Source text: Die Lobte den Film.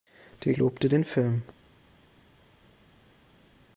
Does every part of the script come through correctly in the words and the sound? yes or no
yes